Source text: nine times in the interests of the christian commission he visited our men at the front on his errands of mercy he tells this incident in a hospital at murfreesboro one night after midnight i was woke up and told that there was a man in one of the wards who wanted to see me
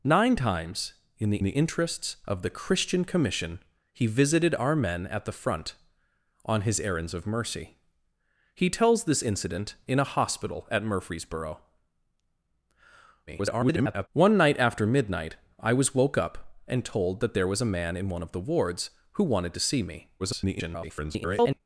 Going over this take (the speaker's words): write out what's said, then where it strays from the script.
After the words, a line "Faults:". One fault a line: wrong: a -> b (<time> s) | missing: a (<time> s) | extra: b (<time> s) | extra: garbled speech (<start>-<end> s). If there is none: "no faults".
nine times in the the interests of the christian commission he visited our men at the front on his errands of mercy he tells this incident in a hospital at murfreesboro [garbled] one night after midnight i was woke up and told that there was a man in one of the wards who wanted to see me [garbled]
Faults:
extra: the (1.4 s)
extra: garbled speech (13.3-14.1 s)
extra: garbled speech (20.2-21.6 s)